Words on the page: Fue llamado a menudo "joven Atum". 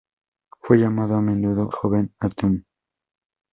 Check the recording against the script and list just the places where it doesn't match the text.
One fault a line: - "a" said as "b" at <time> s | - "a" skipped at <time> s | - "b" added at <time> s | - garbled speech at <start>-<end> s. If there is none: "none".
none